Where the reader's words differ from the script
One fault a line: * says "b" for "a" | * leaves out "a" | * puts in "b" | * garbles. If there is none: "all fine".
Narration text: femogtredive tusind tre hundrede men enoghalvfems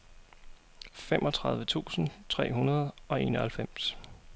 * says "og" for "men"